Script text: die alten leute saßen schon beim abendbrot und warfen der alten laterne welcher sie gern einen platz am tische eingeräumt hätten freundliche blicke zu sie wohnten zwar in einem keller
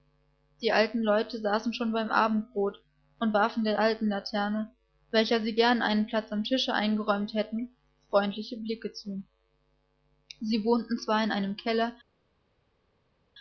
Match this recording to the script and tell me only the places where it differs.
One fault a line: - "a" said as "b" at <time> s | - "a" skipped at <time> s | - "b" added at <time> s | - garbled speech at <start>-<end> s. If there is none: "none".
none